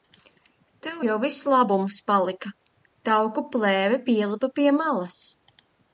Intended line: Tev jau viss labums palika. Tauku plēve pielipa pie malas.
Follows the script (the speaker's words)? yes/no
yes